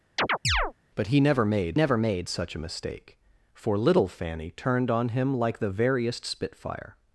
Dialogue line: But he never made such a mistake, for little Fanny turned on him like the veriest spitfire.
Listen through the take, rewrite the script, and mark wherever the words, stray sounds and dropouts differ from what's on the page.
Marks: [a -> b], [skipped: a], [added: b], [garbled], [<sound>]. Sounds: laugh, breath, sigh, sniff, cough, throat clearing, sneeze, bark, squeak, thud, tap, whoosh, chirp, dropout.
[chirp] But he never made [added: never made] such a mistake, for little Fanny turned on him like the veriest spitfire.